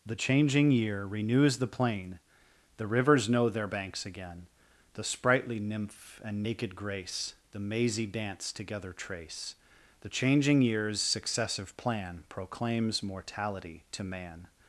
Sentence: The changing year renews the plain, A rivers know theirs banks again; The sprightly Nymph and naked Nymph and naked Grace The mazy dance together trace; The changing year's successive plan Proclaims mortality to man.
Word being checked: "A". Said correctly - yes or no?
no